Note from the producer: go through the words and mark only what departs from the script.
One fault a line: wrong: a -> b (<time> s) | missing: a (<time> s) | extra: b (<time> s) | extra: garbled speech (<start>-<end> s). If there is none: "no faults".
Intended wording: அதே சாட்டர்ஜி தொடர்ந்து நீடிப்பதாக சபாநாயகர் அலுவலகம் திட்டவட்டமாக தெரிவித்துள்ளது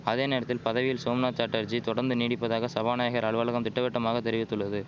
extra: நேரத்தில் பதவியில் சோம்நாத் (0.2 s)